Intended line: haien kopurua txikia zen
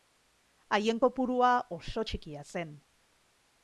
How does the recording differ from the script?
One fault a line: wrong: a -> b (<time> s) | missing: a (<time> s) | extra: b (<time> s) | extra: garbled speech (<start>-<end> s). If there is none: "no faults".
extra: oso (1.8 s)